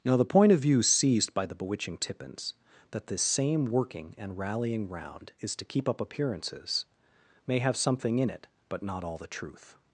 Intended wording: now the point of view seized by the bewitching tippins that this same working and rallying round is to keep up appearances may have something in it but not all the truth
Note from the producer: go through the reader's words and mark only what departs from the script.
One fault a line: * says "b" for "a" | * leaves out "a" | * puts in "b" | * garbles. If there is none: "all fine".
all fine